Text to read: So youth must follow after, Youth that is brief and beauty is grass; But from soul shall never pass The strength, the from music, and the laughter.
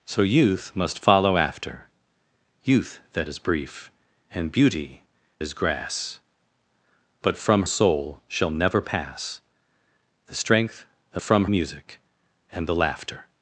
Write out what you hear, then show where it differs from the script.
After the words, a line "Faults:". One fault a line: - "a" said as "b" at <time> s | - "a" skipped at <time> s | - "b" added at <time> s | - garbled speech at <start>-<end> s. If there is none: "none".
So youth must follow after, Youth that is brief and beauty is grass; But from soul shall never pass The strength, the from music, and the laughter.
Faults:
none